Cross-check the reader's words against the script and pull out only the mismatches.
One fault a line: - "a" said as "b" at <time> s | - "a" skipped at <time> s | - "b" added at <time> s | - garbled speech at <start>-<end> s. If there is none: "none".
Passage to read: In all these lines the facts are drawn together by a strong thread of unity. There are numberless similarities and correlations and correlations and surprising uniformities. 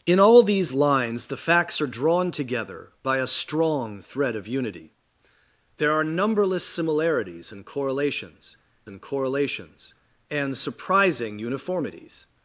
none